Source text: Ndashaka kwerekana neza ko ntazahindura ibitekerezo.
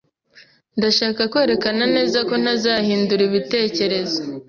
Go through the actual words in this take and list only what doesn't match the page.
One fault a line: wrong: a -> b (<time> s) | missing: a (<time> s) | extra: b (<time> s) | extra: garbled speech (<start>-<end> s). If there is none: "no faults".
no faults